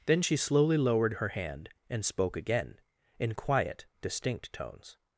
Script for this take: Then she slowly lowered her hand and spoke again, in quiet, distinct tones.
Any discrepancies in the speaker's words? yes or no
no